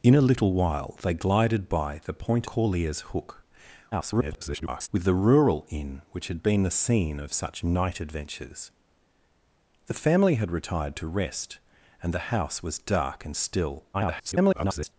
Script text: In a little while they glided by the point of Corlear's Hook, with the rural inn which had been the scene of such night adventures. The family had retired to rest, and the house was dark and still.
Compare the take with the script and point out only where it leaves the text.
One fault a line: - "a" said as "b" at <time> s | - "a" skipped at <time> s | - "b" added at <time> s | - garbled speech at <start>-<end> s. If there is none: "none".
- "of" skipped at 2.5 s
- garbled speech at 3.9-4.9 s
- garbled speech at 13.9-14.9 s